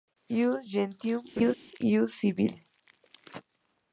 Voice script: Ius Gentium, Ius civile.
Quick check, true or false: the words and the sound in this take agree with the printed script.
false